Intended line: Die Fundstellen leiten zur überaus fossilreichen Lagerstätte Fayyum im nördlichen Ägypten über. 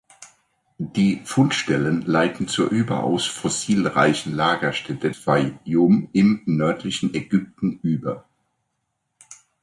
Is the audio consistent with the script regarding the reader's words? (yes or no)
yes